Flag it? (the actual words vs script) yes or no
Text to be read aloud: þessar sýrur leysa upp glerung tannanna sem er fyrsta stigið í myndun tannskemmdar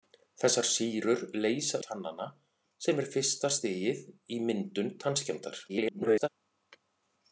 yes